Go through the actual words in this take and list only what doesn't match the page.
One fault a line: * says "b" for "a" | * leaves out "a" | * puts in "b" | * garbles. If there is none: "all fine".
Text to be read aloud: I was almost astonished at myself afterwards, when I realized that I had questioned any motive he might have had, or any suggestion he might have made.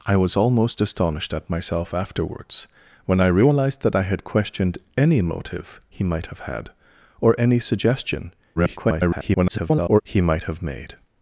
* garbles